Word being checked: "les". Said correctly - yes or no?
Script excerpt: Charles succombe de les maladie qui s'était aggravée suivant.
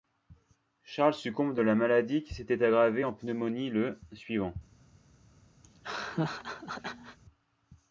no